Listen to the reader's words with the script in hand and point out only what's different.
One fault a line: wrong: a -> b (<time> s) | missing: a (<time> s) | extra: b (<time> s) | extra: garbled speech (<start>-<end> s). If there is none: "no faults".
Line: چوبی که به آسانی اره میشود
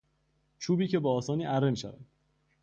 no faults